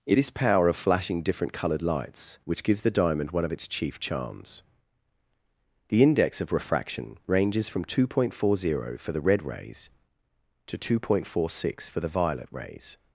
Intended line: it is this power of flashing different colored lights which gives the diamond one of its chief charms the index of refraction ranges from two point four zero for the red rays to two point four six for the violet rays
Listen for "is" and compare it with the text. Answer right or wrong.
wrong